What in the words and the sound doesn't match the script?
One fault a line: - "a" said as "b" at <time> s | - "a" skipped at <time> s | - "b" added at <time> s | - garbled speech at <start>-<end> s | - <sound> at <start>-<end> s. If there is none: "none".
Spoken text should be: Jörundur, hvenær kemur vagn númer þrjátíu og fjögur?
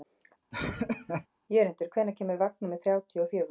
- laugh at 0.5-1.3 s